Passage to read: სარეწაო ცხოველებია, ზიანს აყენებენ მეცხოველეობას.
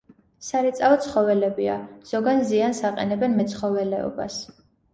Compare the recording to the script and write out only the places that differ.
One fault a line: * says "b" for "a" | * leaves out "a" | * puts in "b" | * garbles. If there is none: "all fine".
* puts in "ზოგან"